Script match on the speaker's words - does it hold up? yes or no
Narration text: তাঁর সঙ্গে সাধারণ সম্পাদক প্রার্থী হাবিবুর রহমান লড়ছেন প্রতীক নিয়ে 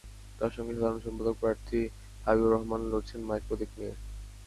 no